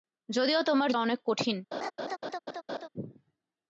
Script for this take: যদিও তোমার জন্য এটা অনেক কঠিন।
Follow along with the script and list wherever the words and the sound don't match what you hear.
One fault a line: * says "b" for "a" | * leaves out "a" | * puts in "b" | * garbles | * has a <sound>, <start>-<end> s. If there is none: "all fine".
* leaves out "জন্য এটা"
* has a laugh, 1.7-2.9 s